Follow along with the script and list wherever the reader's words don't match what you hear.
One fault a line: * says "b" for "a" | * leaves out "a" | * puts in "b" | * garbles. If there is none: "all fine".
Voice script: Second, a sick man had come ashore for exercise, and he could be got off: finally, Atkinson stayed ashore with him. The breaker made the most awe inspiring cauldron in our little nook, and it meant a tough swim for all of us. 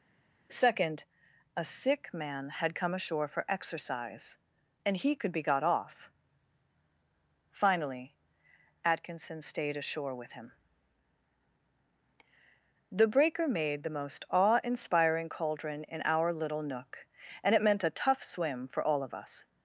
all fine